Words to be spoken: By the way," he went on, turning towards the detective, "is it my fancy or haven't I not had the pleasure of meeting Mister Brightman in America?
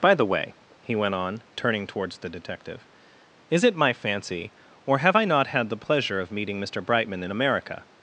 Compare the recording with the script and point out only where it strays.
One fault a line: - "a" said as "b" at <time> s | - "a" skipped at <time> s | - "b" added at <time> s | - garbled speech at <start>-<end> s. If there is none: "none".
- "haven't" said as "have" at 5.0 s